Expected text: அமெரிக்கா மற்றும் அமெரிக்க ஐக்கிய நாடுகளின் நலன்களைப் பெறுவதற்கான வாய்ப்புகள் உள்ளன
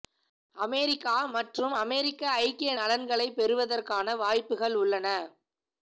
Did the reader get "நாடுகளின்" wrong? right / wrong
wrong